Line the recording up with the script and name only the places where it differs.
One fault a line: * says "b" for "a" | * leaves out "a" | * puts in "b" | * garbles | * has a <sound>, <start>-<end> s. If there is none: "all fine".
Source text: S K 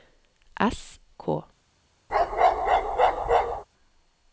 * has a bark, 2.1-3.6 s